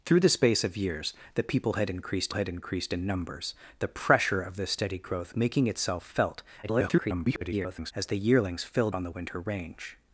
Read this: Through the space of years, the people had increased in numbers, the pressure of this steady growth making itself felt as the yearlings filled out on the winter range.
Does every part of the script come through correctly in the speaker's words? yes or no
no